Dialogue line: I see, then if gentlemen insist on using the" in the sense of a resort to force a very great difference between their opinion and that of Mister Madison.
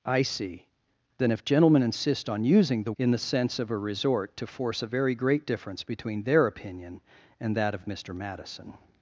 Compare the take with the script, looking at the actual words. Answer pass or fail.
pass